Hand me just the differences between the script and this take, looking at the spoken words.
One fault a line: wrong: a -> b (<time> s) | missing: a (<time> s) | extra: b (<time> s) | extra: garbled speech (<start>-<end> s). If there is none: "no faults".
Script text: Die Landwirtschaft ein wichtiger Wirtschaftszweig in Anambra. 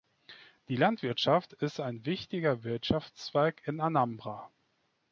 extra: ist (1.5 s)